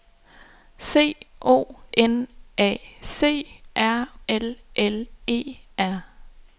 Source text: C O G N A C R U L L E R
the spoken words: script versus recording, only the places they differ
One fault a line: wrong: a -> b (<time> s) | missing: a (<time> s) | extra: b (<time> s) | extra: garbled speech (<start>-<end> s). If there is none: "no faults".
missing: G (1.8 s)
missing: U (4.1 s)